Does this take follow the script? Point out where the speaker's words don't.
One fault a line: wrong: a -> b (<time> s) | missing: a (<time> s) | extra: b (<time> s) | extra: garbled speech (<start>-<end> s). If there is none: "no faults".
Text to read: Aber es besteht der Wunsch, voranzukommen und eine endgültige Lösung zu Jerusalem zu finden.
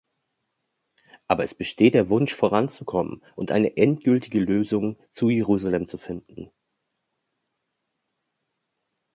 no faults